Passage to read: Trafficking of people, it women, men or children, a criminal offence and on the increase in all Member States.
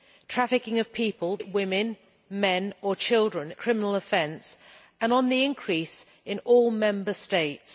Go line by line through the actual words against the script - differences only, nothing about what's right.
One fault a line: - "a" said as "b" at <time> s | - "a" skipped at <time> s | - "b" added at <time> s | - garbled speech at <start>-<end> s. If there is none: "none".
none